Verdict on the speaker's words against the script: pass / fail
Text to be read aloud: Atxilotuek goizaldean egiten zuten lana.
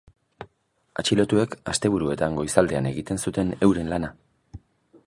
fail